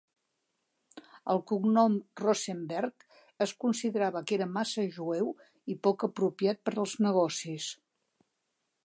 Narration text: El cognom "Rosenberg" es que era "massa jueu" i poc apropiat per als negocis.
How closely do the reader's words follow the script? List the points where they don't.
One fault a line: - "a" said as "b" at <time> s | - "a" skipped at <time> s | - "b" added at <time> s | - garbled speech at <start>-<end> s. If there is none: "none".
- "considerava" added at 3.6 s